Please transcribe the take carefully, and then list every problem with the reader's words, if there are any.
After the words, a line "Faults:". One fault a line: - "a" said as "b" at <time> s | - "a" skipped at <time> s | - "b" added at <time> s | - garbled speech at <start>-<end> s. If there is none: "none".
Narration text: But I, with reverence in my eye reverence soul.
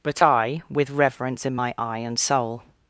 But I, with reverence in my eye and soul.
Faults:
- "reverence" said as "and" at 2.0 s